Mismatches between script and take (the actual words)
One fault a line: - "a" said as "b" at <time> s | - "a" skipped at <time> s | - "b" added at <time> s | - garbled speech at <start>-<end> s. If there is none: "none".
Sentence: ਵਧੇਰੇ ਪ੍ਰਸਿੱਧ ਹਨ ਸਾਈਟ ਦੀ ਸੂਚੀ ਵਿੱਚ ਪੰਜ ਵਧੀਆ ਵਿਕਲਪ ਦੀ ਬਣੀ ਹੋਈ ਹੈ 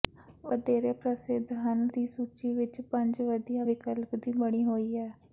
- "ਸਾਈਟ" skipped at 1.9 s